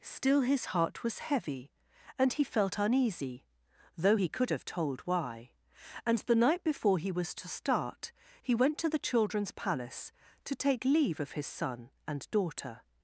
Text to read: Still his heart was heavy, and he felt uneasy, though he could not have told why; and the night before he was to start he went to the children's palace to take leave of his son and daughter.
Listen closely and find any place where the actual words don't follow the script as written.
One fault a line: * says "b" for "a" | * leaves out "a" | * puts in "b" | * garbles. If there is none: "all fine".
* leaves out "not"